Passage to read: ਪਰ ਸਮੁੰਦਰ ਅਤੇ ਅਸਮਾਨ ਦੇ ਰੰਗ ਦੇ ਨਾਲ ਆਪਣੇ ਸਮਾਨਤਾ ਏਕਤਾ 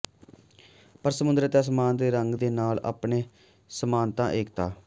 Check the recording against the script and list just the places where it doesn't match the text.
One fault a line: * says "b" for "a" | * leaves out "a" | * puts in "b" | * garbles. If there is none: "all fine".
all fine